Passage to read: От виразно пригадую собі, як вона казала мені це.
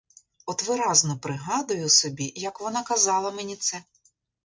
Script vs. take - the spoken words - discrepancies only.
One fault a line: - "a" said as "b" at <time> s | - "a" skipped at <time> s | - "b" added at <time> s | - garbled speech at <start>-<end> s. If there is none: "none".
none